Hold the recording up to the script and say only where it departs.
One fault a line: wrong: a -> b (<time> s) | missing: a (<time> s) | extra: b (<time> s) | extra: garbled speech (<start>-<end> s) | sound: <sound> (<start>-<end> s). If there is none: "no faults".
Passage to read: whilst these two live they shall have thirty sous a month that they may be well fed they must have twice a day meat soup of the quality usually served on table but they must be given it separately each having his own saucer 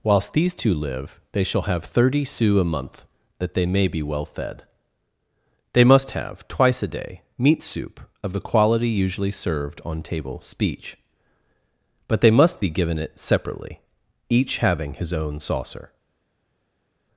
extra: speech (10.4 s)